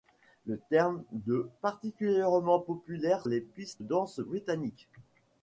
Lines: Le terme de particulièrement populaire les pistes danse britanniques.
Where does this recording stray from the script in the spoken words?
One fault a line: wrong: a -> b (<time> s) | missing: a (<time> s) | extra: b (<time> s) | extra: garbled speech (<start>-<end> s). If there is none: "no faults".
no faults